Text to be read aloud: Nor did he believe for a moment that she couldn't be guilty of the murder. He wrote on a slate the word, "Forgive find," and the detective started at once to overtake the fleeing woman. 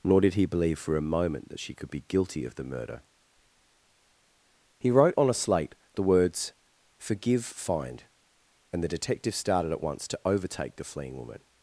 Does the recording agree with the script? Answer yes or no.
no